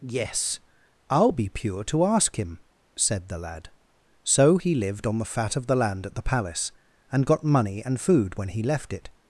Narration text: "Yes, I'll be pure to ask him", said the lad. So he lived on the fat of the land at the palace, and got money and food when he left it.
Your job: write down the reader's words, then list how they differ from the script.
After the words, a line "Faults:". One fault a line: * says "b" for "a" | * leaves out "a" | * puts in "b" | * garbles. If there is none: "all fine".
"Yes, I'll be pure to ask him", said the lad. So he lived on the fat of the land at the palace, and got money and food when he left it.
Faults:
all fine